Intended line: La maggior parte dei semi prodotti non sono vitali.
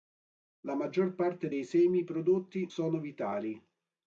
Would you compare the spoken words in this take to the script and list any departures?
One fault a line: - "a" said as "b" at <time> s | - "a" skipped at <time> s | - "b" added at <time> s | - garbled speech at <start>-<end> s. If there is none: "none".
- "non" skipped at 2.7 s